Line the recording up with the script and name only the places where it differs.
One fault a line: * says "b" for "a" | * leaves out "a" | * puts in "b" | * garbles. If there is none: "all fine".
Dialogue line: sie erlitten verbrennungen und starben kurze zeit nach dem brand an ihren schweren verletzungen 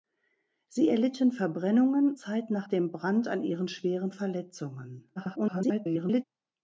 * leaves out "und starben kurze"
* garbles